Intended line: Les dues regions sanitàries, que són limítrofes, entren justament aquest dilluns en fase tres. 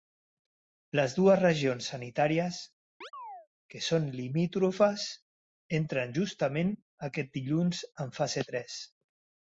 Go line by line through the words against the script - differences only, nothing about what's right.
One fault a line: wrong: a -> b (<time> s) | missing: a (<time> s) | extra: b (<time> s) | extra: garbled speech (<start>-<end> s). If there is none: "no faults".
no faults